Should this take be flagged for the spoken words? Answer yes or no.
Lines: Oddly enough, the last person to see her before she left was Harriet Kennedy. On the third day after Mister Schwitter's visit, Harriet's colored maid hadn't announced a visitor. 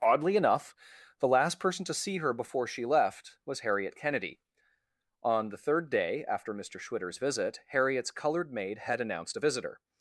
yes